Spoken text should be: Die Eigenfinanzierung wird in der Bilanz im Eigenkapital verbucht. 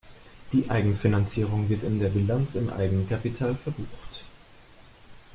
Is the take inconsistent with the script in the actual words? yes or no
no